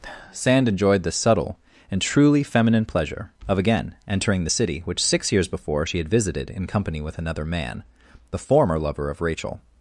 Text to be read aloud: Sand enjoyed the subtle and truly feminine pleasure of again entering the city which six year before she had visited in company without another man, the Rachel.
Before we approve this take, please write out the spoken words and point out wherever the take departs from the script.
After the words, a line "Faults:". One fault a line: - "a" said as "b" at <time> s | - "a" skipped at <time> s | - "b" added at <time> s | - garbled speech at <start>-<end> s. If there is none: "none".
Sand enjoyed the subtle and truly feminine pleasure of again entering the city which six years before she had visited in company with another man, the former lover of Rachel.
Faults:
- "year" said as "years" at 5.3 s
- "without" said as "with" at 7.0 s
- "former lover of" added at 8.4 s